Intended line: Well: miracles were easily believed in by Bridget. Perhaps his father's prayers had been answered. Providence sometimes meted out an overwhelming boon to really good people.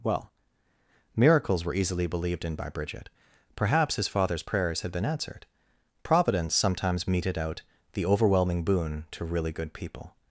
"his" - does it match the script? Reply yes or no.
yes